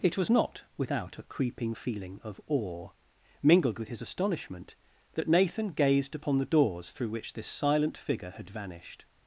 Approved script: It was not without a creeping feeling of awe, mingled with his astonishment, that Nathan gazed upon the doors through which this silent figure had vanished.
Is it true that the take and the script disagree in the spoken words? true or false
false